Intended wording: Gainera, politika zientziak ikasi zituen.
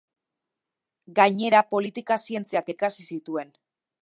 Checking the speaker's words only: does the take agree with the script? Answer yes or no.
yes